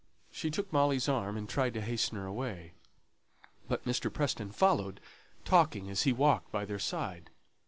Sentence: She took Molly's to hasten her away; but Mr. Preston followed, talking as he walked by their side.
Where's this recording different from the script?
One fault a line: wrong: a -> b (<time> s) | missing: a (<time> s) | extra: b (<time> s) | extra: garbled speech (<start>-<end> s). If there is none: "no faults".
extra: arm and tried (1.1 s)